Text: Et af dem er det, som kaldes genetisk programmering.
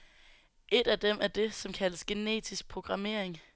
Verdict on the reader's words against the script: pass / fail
pass